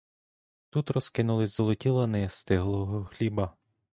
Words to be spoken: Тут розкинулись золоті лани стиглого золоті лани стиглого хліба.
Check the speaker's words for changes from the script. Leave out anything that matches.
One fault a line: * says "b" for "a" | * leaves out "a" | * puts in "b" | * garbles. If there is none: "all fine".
* leaves out "золоті лани стиглого"